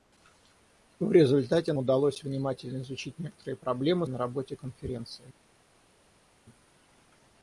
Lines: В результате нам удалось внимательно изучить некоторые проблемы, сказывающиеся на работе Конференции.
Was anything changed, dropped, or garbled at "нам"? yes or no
yes